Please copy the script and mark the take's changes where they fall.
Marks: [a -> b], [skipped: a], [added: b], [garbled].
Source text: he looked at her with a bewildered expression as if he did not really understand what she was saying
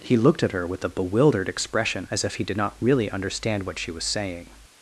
he looked at her with a bewildered expression as if he did not really understand what she was saying